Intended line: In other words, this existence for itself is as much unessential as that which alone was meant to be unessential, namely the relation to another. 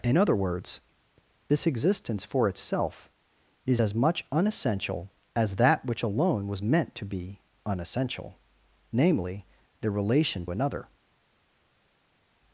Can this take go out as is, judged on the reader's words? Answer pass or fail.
fail